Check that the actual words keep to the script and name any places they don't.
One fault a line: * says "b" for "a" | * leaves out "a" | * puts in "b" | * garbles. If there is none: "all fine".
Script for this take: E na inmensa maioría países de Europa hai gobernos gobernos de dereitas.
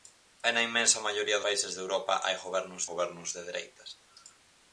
all fine